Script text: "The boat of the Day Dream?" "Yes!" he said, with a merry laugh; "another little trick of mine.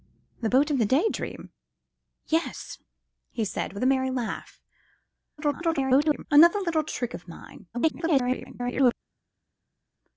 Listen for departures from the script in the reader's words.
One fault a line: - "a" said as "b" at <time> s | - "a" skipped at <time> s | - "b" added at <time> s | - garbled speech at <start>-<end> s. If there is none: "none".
- garbled speech at 5.4-6.3 s
- garbled speech at 7.7-8.9 s